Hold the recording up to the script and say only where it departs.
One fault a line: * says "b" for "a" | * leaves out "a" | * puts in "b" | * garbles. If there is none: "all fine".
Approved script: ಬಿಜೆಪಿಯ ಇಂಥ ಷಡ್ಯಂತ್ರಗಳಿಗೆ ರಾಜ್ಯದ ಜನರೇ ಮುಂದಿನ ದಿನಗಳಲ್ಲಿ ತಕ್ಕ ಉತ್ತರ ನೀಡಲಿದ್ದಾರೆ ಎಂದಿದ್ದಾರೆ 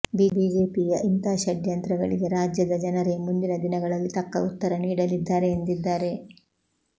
all fine